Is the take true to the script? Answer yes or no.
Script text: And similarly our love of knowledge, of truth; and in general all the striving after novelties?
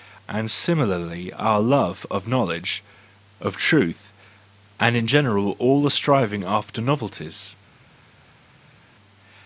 yes